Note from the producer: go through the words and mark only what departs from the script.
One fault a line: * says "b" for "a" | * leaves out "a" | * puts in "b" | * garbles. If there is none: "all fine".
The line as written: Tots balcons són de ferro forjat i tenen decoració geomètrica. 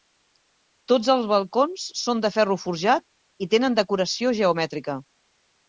* puts in "els"